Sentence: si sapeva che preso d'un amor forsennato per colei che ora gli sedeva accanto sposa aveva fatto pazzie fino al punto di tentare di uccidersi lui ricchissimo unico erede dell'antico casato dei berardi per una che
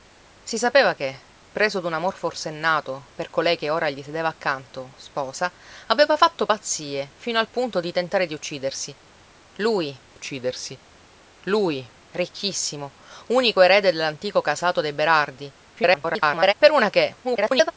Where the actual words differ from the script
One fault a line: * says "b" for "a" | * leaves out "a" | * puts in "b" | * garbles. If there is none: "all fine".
* puts in "uccidersi lui"
* garbles
* garbles